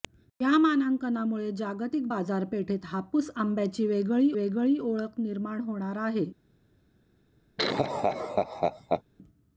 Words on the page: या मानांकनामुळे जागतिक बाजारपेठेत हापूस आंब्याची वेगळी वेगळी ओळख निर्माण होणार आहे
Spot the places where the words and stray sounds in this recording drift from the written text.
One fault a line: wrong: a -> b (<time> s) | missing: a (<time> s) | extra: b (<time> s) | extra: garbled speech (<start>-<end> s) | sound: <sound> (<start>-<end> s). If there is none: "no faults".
sound: laugh (7.6-9.0 s)